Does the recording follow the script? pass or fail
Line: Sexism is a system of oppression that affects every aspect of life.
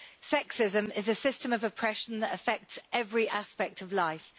pass